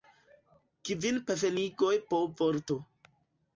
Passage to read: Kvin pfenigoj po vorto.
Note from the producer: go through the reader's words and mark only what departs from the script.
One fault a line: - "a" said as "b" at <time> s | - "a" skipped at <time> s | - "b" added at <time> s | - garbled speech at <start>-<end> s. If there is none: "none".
none